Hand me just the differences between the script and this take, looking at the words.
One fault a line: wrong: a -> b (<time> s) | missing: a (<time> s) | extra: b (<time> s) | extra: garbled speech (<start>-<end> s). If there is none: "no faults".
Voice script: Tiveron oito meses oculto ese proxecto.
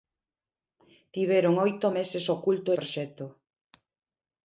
missing: ese (2.7 s)